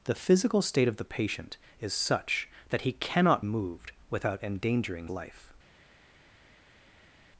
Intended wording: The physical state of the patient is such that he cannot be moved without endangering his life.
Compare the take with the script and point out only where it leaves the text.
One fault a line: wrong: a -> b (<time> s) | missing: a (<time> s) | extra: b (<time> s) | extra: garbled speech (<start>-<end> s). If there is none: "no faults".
missing: be (3.4 s)
missing: his (5.1 s)